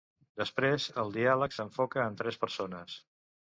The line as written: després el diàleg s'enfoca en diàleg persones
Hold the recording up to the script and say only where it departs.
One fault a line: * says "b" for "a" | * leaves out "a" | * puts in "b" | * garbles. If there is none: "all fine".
* says "tres" for "diàleg"